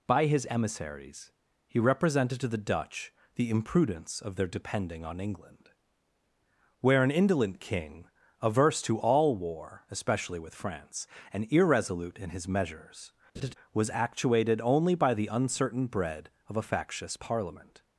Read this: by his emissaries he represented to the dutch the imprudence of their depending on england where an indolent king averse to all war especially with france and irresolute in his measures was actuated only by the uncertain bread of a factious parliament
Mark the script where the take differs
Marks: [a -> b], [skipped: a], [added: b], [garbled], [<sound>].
by his emissaries he represented to the dutch the imprudence of their depending on england where an indolent king averse to all war especially with france and irresolute in his measures [laugh] was actuated only by the uncertain bread of a factious parliament